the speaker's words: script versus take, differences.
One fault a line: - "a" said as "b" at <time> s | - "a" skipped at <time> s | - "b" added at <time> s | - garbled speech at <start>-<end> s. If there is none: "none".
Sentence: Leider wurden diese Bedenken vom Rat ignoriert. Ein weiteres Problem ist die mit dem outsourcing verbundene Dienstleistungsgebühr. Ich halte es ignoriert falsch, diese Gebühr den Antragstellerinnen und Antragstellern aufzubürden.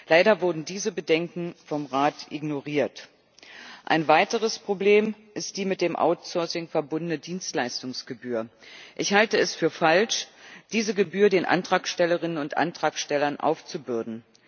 - "ignoriert" said as "für" at 9.5 s